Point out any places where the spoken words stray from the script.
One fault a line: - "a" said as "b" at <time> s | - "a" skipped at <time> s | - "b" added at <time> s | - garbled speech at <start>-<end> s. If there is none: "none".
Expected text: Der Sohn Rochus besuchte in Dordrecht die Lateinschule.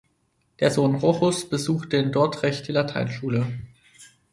none